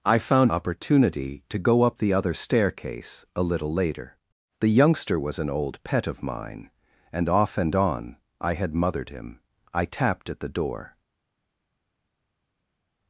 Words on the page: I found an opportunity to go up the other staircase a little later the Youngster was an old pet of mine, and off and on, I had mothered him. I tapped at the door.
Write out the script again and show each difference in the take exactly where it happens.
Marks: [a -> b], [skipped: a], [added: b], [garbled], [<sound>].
I found [skipped: an] opportunity to go up the other staircase a little later the Youngster was an old pet of mine, and off and on, I had mothered him. I tapped at the door.